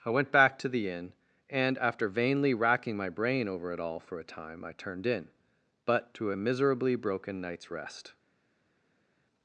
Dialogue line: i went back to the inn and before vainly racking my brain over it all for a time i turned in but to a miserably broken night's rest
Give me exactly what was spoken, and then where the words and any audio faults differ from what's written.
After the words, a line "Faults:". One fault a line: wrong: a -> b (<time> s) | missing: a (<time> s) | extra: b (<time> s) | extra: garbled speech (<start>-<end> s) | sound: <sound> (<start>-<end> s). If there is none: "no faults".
i went back to the inn and after vainly racking my brain over it all for a time i turned in but to a miserably broken night's rest
Faults:
wrong: before -> after (1.8 s)